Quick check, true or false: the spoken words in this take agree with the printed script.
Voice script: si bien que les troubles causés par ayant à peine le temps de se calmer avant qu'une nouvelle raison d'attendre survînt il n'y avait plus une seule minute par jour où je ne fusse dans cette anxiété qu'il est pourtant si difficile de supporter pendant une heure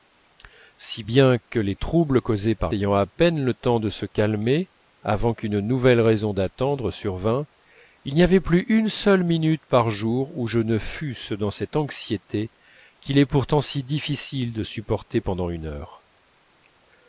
true